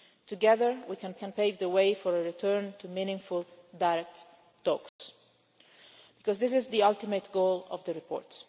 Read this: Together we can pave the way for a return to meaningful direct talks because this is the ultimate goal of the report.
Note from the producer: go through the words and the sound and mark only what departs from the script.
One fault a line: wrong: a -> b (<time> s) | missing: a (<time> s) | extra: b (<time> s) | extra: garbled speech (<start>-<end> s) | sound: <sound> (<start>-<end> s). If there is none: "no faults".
extra: can (1.1 s)
sound: dropout (4.9-5.0 s)